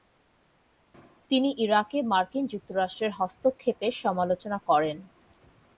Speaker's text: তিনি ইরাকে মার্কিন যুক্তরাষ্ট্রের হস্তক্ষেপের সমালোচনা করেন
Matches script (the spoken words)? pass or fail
pass